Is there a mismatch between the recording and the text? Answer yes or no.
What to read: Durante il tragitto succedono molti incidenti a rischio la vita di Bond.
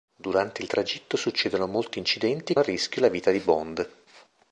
no